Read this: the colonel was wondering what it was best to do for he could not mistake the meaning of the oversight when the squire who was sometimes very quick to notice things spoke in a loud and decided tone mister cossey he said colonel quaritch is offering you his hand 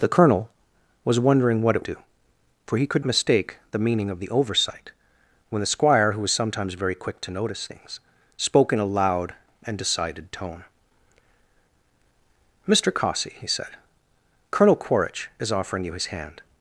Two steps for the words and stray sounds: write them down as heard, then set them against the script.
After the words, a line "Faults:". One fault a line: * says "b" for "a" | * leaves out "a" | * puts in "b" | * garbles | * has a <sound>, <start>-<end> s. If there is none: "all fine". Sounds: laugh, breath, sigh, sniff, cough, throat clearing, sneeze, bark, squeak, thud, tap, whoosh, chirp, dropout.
the colonel was wondering what it do for he could mistake the meaning of the oversight when the squire who was sometimes very quick to notice things spoke in a loud and decided tone mister cossey he said colonel quaritch is offering you his hand
Faults:
* leaves out "was best to"
* leaves out "not"